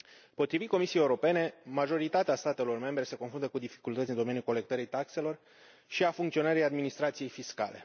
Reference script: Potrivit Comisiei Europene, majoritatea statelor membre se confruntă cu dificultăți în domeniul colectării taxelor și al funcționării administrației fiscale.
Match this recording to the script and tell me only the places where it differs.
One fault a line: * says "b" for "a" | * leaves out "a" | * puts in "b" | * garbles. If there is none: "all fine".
all fine